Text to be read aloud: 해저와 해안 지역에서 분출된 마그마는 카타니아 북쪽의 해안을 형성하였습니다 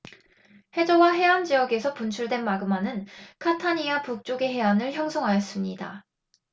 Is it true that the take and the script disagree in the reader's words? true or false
false